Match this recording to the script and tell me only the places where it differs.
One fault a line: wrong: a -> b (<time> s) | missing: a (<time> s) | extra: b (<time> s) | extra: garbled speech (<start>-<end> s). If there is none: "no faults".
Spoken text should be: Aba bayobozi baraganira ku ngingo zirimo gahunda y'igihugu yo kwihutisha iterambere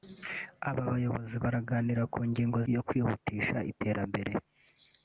missing: zirimo gahunda y'igihugu (2.6 s)